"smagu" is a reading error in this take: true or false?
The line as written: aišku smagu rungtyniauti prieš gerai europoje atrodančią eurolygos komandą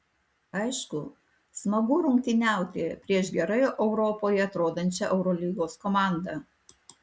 false